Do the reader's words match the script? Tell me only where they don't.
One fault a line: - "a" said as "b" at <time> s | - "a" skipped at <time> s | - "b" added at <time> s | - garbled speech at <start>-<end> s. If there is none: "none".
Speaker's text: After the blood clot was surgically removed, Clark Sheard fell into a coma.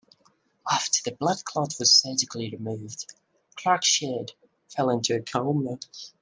none